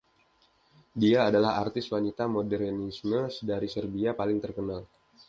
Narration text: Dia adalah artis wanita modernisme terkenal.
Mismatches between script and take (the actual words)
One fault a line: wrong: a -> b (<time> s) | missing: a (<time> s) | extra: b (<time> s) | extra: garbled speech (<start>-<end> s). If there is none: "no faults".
extra: dari Serbia paling (3.5 s)